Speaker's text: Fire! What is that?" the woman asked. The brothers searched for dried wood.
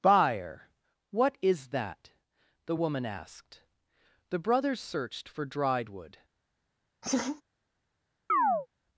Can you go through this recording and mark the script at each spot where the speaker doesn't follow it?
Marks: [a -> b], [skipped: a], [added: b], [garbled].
[Fire! -> Buyer] What is that?" the woman asked. The brothers searched for dried wood.